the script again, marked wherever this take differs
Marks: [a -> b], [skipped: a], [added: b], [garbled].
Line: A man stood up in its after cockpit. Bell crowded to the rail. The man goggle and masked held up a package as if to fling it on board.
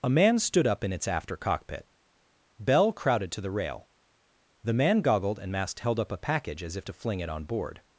A man stood up in its after cockpit. Bell crowded to the rail. The man [goggle -> goggled] and masked held up a package as if to fling it on board.